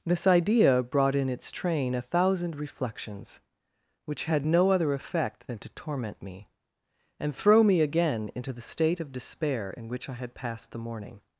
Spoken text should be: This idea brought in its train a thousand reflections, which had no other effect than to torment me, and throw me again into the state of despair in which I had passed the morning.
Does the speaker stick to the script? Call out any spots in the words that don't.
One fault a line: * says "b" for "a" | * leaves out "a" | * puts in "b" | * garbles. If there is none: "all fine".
all fine